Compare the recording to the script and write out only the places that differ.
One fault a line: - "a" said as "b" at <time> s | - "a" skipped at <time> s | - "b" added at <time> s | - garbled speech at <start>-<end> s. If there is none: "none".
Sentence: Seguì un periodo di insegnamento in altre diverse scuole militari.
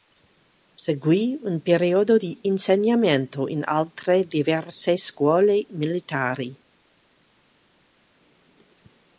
none